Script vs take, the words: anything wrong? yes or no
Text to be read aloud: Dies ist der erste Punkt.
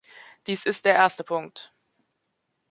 no